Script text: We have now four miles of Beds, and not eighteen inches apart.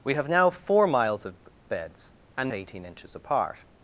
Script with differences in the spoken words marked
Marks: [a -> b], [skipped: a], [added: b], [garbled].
We have now four miles of Beds, and [skipped: not] eighteen inches apart.